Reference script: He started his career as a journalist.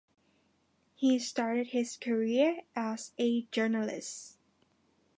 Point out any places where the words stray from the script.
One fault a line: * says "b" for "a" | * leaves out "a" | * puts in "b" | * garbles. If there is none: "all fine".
all fine